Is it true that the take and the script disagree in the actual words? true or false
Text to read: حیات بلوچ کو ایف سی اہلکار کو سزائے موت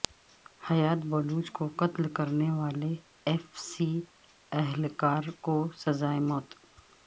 true